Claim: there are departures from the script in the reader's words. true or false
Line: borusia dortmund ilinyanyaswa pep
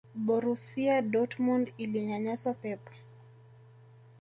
false